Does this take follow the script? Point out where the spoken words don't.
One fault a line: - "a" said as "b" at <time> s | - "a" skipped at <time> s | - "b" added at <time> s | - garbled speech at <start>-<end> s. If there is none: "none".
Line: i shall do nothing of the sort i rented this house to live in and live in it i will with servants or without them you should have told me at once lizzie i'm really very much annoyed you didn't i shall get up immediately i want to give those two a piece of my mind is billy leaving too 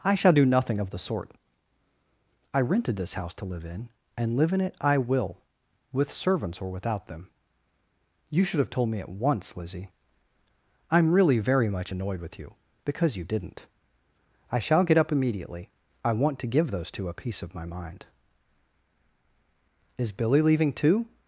- "with you because" added at 12.2 s